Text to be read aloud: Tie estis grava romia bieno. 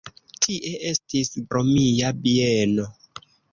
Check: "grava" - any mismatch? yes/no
yes